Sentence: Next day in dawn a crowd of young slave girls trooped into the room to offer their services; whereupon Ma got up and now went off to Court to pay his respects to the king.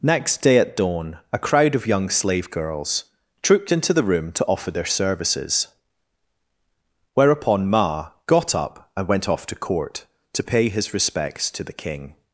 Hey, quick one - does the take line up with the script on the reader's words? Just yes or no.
no